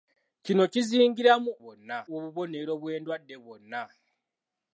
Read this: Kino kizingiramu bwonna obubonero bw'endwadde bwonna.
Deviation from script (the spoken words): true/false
false